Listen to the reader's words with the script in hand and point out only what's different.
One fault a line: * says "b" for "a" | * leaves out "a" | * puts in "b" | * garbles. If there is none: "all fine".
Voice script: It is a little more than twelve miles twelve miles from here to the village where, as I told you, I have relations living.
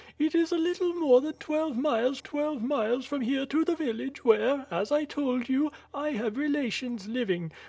all fine